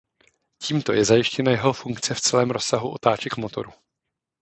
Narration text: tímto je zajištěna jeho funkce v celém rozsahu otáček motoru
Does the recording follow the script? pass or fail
pass